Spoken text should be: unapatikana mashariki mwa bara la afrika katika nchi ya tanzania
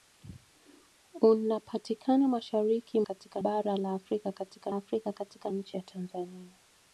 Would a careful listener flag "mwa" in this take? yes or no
yes